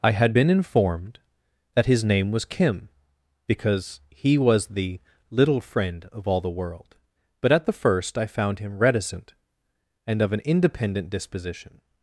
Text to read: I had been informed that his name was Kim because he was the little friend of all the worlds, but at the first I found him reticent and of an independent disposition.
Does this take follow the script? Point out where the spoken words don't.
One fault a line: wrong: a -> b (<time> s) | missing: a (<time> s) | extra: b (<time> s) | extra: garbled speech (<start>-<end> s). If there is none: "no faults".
wrong: worlds -> world (6.5 s)